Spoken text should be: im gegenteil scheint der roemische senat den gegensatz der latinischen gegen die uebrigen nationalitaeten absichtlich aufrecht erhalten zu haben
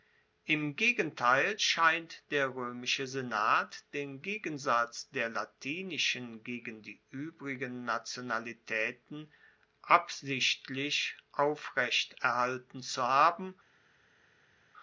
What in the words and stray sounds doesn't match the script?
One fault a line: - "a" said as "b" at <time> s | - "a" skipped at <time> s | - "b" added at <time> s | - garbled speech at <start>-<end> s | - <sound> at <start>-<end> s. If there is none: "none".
none